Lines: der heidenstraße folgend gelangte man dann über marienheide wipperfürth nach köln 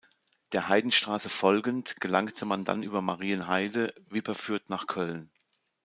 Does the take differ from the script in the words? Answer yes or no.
no